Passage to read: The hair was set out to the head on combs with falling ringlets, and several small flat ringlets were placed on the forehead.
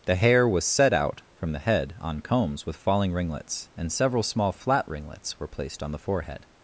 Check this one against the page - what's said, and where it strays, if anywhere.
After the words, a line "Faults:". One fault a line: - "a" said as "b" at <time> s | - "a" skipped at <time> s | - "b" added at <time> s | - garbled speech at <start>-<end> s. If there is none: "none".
The hair was set out from the head on combs with falling ringlets, and several small flat ringlets were placed on the forehead.
Faults:
- "to" said as "from" at 1.4 s